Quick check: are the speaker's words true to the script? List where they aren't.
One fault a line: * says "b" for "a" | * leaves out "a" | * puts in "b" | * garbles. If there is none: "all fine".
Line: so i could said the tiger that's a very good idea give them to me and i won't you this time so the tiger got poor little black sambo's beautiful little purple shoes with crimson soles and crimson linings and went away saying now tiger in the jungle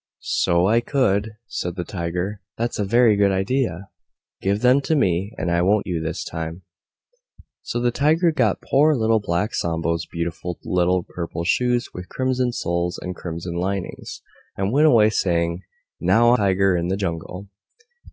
all fine